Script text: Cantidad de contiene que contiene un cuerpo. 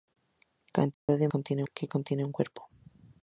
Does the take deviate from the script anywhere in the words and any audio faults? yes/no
yes